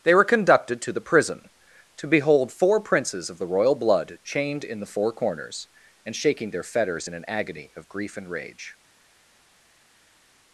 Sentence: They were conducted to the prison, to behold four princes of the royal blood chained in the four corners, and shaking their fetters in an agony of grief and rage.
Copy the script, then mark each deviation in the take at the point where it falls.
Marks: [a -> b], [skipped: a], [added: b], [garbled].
They were conducted to the prison, to behold four princes of the royal blood chained in the four corners, and shaking their fetters in an agony of grief and rage.